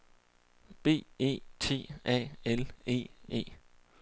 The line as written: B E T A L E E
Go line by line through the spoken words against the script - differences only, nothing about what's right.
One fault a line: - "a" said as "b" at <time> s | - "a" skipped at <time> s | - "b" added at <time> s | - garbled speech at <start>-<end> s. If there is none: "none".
none